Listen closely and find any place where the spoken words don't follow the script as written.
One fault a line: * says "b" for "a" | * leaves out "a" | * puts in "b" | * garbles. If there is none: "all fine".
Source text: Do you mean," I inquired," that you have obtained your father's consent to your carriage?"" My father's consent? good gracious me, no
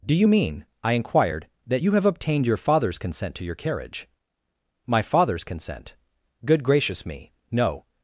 all fine